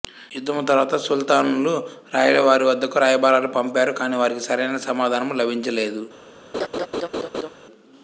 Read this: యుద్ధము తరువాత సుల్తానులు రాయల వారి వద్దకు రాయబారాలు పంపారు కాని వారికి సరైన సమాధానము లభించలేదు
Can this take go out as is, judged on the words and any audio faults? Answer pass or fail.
fail